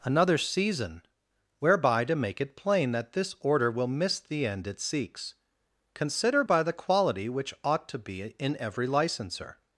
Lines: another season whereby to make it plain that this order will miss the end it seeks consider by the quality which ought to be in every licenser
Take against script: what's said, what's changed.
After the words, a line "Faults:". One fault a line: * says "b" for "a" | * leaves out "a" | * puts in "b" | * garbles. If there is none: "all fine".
another season whereby to make it plain that this order will miss the end it seeks consider by the quality which ought to be in every licenser
Faults:
all fine